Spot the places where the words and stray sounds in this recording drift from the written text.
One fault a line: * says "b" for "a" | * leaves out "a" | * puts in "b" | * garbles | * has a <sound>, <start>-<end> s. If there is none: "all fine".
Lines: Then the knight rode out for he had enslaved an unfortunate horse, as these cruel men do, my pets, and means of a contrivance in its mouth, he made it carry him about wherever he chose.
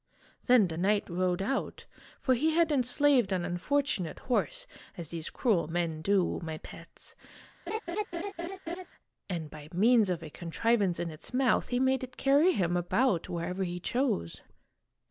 * has a laugh, 7.7-8.9 s
* puts in "by"